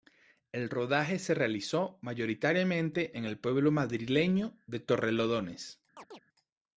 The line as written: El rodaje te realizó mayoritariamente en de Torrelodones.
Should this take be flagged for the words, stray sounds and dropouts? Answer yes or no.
yes